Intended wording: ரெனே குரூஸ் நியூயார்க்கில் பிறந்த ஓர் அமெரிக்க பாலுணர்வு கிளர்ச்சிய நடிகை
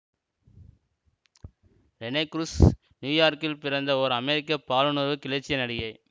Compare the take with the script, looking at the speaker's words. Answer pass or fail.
pass